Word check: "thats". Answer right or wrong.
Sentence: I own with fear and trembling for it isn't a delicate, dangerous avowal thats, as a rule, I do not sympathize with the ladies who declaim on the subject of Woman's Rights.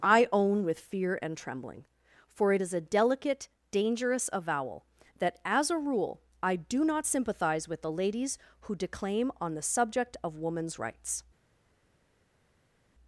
wrong